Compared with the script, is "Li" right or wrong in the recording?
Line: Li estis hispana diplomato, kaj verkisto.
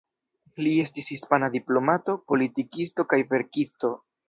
right